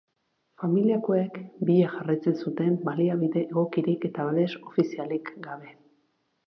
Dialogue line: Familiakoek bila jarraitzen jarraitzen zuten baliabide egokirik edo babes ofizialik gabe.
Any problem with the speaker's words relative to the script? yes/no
yes